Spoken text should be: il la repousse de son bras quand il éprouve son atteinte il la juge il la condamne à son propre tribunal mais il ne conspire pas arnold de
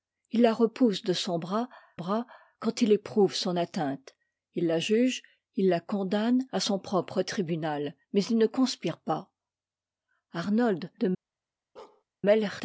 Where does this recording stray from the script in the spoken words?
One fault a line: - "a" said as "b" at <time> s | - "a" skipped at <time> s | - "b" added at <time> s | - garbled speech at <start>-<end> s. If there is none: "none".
- "bras" added at 2.0 s